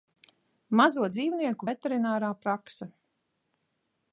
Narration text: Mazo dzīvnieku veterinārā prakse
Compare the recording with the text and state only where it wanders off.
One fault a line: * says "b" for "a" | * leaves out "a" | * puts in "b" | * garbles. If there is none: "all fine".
all fine